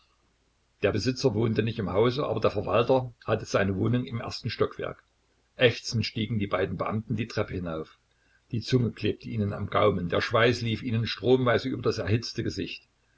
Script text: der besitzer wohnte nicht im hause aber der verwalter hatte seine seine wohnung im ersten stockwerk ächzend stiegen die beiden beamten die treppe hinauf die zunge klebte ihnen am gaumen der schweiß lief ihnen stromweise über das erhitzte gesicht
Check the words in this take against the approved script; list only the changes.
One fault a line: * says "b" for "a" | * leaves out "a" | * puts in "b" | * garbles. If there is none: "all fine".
* leaves out "seine"